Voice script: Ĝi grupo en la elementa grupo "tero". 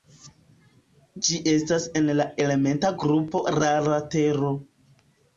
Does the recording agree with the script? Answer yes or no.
no